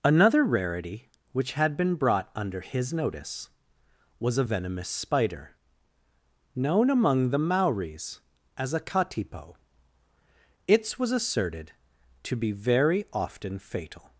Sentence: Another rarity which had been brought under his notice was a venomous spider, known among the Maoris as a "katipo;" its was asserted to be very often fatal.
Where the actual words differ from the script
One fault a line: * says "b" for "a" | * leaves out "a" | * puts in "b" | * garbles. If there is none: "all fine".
all fine